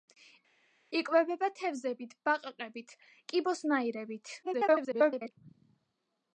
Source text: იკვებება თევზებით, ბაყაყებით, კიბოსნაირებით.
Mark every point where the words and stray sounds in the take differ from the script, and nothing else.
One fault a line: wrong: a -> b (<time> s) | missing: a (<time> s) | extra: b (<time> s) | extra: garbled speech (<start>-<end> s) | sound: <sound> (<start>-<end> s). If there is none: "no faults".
extra: garbled speech (4.4-5.3 s)